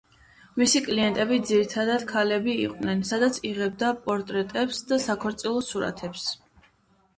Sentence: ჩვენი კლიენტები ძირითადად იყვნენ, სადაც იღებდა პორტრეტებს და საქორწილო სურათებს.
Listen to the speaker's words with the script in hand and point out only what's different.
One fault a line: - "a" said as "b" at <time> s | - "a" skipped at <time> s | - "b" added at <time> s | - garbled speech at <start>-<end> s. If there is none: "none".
- "ჩვენი" said as "მისი" at 0.6 s
- "ქალები" added at 2.1 s